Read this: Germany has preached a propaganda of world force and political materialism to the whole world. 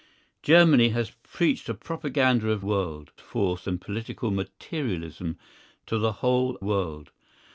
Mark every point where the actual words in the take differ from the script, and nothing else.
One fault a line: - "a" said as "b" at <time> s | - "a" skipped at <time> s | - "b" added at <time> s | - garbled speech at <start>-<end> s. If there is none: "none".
none